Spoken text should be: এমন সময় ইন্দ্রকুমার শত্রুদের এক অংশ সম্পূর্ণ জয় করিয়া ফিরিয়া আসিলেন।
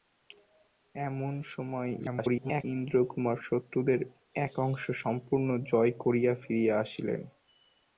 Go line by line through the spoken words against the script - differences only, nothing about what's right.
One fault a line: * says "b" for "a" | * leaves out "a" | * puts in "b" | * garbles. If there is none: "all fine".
* garbles